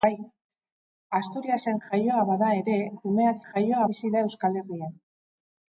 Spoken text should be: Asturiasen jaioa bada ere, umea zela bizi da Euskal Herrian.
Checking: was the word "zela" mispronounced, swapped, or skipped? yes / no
yes